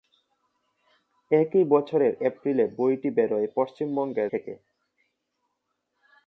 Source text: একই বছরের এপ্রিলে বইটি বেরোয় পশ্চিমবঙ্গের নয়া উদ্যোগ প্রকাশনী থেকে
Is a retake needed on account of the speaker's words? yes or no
yes